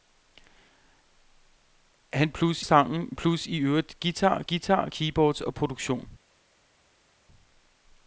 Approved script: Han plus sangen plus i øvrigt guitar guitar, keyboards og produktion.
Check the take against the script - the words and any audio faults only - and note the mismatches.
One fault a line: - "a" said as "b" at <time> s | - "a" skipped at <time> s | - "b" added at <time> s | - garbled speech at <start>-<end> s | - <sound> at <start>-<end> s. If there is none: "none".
none